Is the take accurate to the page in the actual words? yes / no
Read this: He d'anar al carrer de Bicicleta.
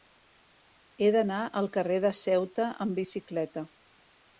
no